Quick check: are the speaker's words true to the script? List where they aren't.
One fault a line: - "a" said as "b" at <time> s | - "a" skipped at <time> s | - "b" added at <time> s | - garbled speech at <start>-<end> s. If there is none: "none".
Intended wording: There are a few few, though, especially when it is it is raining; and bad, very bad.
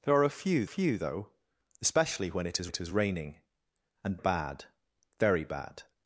none